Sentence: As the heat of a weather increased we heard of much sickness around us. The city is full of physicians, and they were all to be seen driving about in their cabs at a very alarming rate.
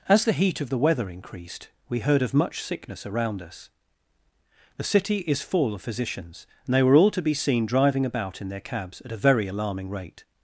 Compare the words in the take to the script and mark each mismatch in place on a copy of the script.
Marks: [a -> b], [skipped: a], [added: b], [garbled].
As the heat of [a -> the] weather increased we heard of much sickness around us. The city is full of physicians, and they were all to be seen driving about in their cabs at a very alarming rate.